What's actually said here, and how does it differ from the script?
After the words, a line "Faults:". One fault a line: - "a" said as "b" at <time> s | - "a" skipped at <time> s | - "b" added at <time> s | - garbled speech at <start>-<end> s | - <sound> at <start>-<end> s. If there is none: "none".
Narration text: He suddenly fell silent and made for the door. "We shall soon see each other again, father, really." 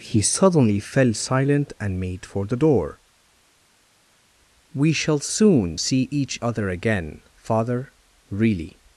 He suddenly fell silent and made for the door. "We shall soon see each other again, father, really."
Faults:
none